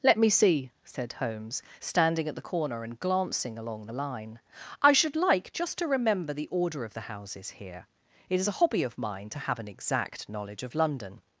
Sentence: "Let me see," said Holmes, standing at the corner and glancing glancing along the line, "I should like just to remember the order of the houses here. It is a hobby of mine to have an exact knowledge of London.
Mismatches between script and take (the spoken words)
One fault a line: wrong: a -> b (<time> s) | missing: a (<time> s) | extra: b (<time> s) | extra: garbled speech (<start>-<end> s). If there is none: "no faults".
missing: glancing (3.6 s)